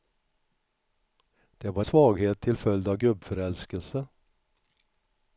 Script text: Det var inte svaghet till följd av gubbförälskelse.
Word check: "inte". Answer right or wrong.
wrong